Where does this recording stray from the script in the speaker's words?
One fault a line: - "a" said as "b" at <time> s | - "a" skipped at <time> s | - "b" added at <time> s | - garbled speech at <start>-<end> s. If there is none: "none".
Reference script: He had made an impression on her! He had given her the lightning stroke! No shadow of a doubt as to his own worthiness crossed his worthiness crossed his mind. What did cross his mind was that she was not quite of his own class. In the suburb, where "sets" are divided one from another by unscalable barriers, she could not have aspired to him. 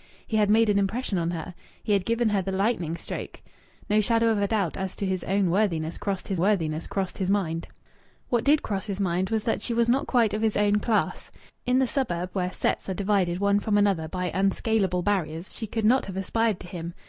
none